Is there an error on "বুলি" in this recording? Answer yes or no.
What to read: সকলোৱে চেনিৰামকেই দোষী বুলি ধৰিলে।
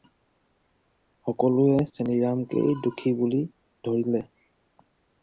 no